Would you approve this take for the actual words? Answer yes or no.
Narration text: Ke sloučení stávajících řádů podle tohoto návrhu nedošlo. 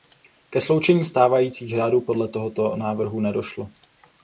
yes